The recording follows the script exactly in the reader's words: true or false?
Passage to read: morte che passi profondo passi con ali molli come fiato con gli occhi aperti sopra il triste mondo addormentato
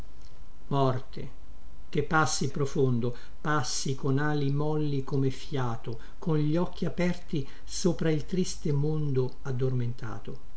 true